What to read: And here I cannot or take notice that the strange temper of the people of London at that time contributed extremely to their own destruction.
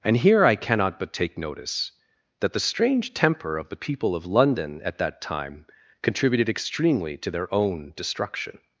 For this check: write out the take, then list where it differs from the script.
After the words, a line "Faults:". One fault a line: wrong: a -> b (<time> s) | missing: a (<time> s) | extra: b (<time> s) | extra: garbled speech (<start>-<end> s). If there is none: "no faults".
And here I cannot but take notice that the strange temper of the people of London at that time contributed extremely to their own destruction.
Faults:
wrong: or -> but (1.0 s)